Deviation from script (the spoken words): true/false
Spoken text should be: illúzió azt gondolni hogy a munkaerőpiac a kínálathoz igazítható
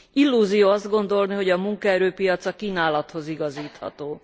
false